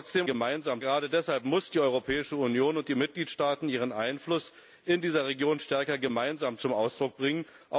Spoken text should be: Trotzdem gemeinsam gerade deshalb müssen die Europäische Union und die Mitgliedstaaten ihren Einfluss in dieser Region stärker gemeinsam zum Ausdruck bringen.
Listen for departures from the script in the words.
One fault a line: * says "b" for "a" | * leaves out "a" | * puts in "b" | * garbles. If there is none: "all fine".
all fine